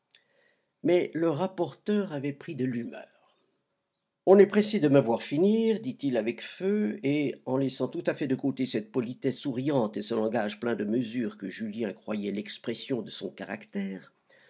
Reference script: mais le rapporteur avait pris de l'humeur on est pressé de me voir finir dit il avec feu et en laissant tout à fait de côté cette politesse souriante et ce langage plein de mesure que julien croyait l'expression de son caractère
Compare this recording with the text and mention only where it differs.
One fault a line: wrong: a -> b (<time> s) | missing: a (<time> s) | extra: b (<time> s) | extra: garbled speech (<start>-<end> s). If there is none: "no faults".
no faults